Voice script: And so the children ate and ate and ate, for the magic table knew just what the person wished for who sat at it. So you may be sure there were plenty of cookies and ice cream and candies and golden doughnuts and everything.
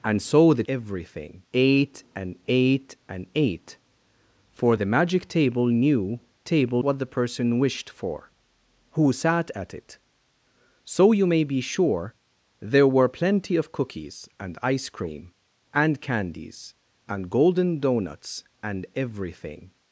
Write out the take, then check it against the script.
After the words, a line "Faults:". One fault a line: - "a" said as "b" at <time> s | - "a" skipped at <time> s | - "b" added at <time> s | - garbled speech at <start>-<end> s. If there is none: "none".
And so the everything ate and ate and ate, for the magic table knew table what the person wished for who sat at it. So you may be sure there were plenty of cookies and ice cream and candies and golden doughnuts and everything.
Faults:
- "children" said as "everything" at 0.7 s
- "just" said as "table" at 6.4 s